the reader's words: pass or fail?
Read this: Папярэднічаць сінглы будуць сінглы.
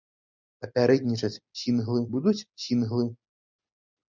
pass